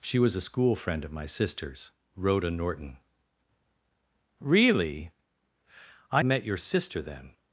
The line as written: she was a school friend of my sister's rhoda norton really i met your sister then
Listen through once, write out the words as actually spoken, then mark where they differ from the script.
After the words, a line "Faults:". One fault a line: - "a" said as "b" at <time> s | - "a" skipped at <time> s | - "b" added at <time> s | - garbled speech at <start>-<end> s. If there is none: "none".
she was a school friend of my sister's rhoda norton really i met your sister then
Faults:
none